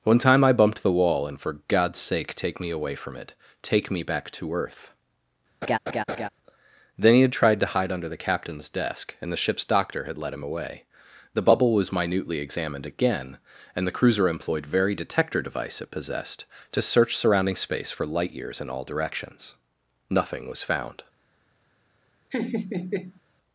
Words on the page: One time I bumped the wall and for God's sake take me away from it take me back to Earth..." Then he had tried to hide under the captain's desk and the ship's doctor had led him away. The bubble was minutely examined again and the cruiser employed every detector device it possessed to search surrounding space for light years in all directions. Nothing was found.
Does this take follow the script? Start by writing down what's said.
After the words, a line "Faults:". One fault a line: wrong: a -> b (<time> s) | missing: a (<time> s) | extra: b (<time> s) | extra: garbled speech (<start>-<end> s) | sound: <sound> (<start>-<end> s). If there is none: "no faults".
One time I bumped the wall and for God's sake take me away from it take me back to Earth..." Then he had tried to hide under the captain's desk and the ship's doctor had led him away. The bubble was minutely examined again and the cruiser employed very detector device it possessed to search surrounding space for light years in all directions. Nothing was found.
Faults:
sound: laugh (5.6-6.3 s)
wrong: every -> very (14.7 s)
sound: laugh (22.3-23.2 s)